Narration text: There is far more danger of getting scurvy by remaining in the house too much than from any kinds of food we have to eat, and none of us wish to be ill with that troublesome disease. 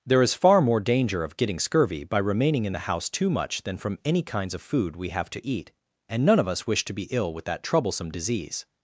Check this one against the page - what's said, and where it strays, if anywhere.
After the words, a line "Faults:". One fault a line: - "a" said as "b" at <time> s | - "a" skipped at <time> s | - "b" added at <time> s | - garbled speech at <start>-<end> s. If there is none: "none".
There is far more danger of getting scurvy by remaining in the house too much than from any kinds of food we have to eat, and none of us wish to be ill with that troublesome disease.
Faults:
none